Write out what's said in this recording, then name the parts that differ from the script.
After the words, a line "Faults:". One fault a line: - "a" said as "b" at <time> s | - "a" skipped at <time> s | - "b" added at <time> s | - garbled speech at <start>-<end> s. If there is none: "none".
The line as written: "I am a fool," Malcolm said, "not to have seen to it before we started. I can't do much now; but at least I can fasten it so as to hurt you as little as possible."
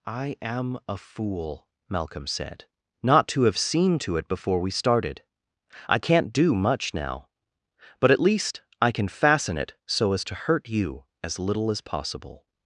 "I am a fool," Malcolm said, "not to have seen to it before we started. I can't do much now; but at least I can fasten it so as to hurt you as little as possible."
Faults:
none